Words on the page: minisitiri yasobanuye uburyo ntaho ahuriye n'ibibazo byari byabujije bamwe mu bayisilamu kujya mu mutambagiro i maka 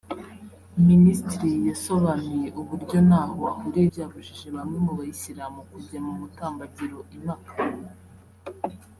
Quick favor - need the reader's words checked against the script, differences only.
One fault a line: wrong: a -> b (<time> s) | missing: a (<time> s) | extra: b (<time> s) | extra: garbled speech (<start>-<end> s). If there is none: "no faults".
missing: n'ibibazo byari (3.9 s)